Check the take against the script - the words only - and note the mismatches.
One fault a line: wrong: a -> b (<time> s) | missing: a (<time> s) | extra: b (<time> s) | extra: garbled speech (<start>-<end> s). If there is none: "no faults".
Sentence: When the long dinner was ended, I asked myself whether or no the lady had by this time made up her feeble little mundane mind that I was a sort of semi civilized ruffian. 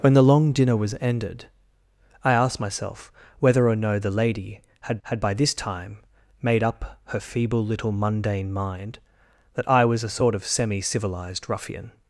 extra: had (5.0 s)